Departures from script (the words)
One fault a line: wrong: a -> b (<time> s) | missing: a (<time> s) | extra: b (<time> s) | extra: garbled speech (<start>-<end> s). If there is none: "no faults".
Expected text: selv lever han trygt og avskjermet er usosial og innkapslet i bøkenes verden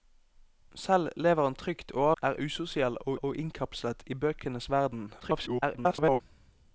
missing: avskjermet (2.1 s)
extra: og (3.2 s)
extra: garbled speech (5.2-6.2 s)